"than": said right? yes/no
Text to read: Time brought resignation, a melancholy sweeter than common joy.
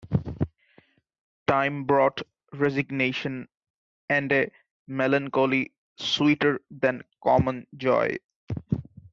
yes